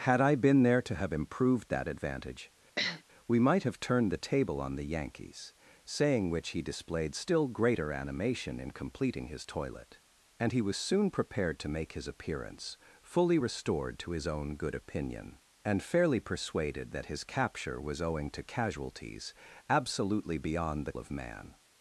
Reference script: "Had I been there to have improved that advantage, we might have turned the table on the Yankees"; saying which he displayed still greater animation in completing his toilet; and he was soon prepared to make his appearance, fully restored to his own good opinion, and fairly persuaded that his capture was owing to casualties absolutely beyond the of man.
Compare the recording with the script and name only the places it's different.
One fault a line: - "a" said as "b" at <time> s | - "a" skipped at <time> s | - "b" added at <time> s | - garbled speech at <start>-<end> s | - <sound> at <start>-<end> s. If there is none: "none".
- sniff at 2.8-3.0 s